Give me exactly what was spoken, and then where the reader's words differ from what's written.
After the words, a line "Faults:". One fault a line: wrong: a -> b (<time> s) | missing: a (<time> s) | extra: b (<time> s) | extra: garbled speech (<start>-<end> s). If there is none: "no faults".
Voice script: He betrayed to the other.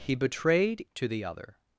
He betrayed to the other.
Faults:
no faults